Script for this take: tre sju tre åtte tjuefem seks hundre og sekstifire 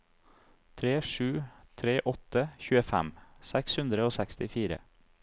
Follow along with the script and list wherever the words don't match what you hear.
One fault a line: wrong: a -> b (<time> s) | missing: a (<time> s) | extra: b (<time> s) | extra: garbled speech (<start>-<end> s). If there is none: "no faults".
no faults